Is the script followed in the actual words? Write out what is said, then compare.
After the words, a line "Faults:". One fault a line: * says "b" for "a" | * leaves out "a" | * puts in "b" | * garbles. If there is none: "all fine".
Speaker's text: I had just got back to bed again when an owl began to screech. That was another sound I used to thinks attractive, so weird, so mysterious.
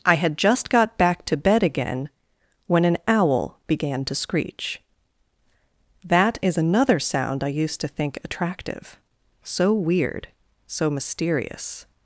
I had just got back to bed again when an owl began to screech. That is another sound I used to think attractive, so weird, so mysterious.
Faults:
* says "is" for "was"
* says "think" for "thinks"